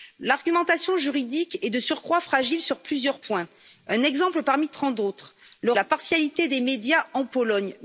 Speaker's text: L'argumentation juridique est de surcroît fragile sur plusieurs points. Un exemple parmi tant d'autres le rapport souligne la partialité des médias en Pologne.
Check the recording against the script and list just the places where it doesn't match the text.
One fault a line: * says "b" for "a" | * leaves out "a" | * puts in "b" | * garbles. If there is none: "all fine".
* leaves out "rapport souligne"